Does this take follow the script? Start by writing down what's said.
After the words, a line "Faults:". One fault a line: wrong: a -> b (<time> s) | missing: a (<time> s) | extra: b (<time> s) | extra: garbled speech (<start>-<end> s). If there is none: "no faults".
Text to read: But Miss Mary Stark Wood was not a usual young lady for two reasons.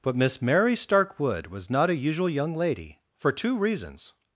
But Miss Mary Stark Wood was not a usual young lady for two reasons.
Faults:
no faults